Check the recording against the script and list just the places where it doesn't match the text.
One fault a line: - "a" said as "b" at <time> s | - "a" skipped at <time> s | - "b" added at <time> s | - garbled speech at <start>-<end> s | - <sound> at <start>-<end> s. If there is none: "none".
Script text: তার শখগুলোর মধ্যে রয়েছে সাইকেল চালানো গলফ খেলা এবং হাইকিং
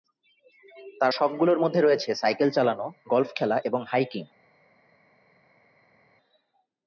none